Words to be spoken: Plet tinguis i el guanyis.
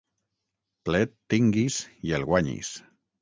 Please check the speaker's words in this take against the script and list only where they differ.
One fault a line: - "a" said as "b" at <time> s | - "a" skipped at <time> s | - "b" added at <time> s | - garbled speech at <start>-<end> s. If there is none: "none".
none